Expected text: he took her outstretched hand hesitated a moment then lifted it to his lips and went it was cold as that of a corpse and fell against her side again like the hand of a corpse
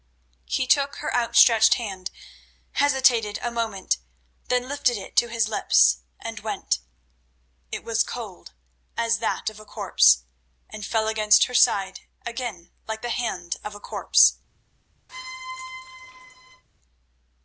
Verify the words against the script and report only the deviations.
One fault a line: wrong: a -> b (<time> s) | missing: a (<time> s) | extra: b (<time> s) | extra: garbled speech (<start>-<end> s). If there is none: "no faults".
no faults